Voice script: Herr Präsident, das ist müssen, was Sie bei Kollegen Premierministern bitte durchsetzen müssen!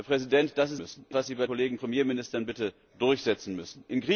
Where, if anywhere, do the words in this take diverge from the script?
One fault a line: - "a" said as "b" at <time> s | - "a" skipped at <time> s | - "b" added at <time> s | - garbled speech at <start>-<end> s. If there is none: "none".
none